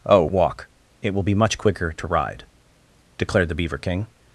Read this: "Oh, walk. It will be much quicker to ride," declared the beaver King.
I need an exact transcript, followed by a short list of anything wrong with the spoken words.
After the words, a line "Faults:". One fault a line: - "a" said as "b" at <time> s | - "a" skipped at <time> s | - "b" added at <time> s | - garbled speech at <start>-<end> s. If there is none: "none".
"Oh, walk. It will be much quicker to ride," declared the beaver King.
Faults:
none